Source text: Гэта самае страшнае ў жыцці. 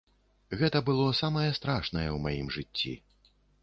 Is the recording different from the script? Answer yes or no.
yes